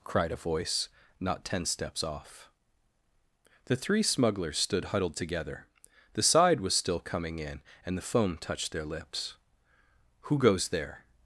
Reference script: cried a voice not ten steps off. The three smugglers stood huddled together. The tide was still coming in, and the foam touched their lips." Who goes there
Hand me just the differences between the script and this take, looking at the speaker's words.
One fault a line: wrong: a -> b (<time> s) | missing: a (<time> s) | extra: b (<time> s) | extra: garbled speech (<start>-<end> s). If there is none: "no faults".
wrong: tide -> side (6.2 s)